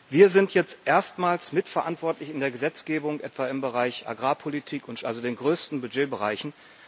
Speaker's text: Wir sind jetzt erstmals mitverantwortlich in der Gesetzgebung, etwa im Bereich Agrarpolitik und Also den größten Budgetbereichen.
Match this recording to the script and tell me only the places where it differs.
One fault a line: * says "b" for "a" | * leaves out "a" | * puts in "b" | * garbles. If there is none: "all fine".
all fine